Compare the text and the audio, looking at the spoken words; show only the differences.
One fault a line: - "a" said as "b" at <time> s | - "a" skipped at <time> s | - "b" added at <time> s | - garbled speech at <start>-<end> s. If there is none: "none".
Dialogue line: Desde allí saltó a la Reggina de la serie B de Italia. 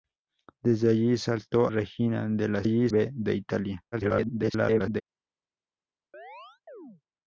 - "a la" skipped at 1.7 s
- "serie" said as "allí" at 2.6 s
- garbled speech at 3.9-5.0 s